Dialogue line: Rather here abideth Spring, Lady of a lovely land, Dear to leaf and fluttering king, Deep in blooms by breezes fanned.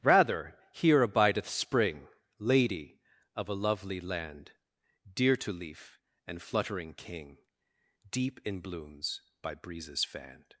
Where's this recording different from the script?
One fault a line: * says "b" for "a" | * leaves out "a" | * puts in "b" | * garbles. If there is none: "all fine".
all fine